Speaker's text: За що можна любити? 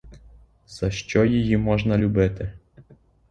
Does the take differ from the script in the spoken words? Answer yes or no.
yes